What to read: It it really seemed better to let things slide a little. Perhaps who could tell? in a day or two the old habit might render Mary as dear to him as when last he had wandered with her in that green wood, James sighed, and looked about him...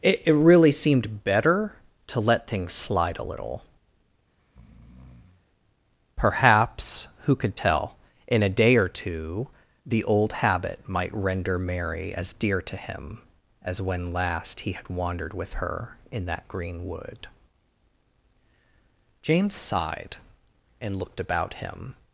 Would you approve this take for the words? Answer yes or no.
yes